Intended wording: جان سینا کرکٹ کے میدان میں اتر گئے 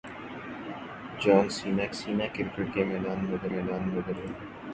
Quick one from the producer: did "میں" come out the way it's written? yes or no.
yes